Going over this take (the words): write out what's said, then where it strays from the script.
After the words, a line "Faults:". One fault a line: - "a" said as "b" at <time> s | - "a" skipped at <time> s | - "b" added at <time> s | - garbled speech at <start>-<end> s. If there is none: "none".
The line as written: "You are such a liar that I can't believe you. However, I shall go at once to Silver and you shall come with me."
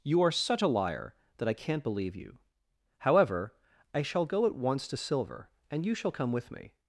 "You are such a liar that I can't believe you. However, I shall go at once to Silver and you shall come with me."
Faults:
none